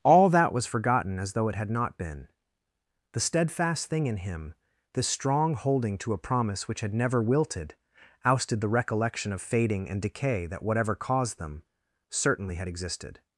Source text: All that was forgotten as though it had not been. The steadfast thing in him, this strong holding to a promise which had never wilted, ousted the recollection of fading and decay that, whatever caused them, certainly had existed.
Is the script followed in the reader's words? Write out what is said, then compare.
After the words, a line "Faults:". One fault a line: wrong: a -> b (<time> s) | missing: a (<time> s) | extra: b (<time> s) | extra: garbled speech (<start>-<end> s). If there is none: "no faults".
All that was forgotten as though it had not been. The steadfast thing in him, this strong holding to a promise which had never wilted, ousted the recollection of fading and decay that, whatever caused them, certainly had existed.
Faults:
no faults